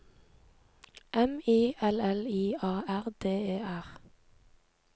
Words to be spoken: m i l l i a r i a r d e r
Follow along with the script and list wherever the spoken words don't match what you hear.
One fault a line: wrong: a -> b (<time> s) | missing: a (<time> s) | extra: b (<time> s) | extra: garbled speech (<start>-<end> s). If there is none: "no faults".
missing: i a r (3.0 s)